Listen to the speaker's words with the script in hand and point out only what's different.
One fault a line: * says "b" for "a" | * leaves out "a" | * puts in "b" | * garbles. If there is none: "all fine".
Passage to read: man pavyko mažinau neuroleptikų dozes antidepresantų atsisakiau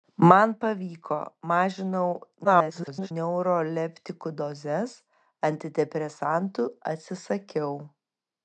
* garbles